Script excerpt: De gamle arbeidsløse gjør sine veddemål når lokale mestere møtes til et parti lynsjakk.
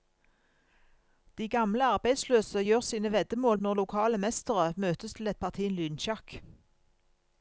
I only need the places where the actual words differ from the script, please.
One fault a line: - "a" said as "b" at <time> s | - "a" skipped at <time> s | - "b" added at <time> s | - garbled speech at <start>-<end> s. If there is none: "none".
none